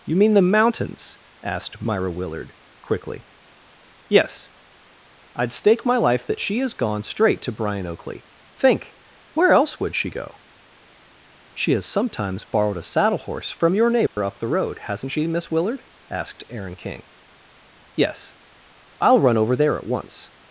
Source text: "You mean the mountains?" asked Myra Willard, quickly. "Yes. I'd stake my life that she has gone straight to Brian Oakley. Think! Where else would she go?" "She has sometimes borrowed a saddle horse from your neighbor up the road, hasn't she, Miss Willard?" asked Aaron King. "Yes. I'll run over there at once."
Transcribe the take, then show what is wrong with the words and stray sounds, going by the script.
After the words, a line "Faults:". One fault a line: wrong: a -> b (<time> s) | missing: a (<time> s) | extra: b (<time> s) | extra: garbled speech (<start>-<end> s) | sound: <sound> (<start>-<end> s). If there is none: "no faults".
"You mean the mountains?" asked Myra Willard, quickly. "Yes. I'd stake my life that she has gone straight to Brian Oakley. Think! Where else would she go?" "She has sometimes borrowed a saddle horse from your neighbor up the road, hasn't she, Miss Willard?" asked Aaron King. "Yes. I'll run over there at once."
Faults:
sound: dropout (14.1-14.2 s)